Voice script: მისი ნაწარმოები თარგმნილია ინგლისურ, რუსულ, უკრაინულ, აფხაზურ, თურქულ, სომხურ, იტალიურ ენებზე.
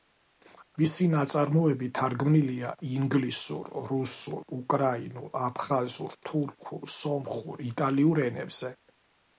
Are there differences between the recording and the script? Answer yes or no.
no